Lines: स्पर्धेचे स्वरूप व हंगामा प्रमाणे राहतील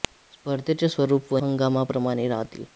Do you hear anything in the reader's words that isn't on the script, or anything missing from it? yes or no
no